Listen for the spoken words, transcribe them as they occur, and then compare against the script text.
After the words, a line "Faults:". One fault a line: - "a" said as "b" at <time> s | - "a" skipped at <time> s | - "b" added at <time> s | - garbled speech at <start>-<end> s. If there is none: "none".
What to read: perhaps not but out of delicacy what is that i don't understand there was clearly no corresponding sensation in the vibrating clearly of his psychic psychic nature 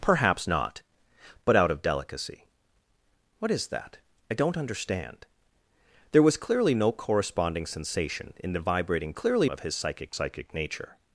perhaps not but out of delicacy what is that i don't understand there was clearly no corresponding sensation in the vibrating clearly of his psychic psychic nature
Faults:
none